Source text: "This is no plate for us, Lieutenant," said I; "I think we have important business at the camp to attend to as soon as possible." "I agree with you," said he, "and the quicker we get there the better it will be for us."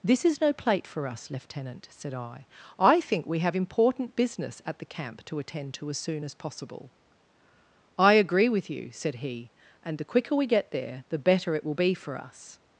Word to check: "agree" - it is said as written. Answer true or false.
true